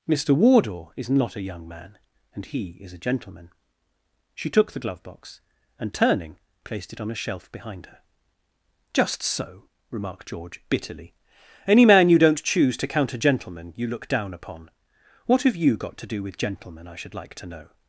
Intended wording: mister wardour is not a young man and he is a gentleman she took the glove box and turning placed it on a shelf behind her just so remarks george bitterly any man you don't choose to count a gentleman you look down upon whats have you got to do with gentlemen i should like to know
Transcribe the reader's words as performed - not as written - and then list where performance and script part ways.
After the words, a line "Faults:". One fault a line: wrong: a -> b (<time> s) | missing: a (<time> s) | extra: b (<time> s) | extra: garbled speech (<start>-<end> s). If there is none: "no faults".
mister wardour is not a young man and he is a gentleman she took the glove box and turning placed it on a shelf behind her just so remarked george bitterly any man you don't choose to count a gentleman you look down upon what have you got to do with gentlemen i should like to know
Faults:
wrong: remarks -> remarked (9.9 s)
wrong: whats -> what (15.3 s)